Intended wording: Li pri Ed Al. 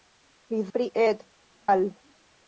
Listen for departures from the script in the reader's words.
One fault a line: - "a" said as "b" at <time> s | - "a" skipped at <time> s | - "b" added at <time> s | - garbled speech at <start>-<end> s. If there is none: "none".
none